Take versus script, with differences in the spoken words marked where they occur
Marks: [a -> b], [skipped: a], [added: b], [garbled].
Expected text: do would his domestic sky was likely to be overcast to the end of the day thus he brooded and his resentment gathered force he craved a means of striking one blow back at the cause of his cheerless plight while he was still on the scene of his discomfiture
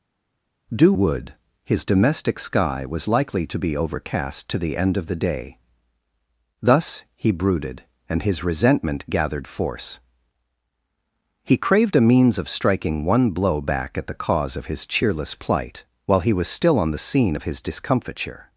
do would his domestic sky was likely to be overcast to the end of the day thus he brooded and his resentment gathered force he craved a means of striking one blow back at the cause of his cheerless plight while he was still on the scene of his discomfiture